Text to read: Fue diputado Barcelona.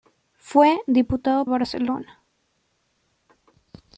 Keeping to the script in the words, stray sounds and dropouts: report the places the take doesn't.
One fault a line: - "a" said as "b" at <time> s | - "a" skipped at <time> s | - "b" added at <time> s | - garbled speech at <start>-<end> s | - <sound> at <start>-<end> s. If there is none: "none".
none